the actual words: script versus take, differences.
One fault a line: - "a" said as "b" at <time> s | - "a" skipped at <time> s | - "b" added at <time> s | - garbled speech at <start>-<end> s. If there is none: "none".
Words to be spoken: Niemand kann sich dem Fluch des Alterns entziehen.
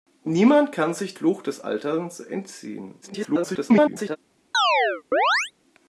- "dem" skipped at 1.1 s
- garbled speech at 3.0-4.2 s